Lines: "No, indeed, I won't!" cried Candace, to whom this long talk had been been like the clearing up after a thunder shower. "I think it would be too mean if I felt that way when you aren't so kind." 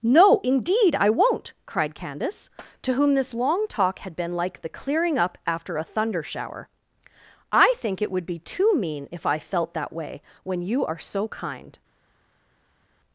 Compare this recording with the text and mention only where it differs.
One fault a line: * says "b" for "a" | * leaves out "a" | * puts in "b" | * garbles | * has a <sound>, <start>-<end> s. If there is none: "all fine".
* leaves out "been"
* says "are" for "aren't"